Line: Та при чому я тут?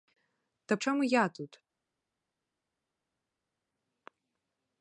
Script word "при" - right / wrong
wrong